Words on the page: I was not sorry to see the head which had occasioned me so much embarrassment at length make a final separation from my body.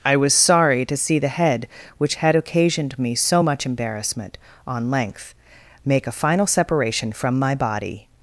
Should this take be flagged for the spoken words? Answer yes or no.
yes